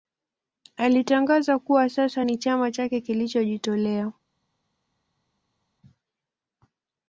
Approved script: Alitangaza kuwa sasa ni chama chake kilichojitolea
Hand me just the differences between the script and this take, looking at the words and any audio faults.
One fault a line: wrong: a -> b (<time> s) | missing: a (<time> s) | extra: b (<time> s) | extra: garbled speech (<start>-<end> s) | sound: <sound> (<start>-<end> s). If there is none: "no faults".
no faults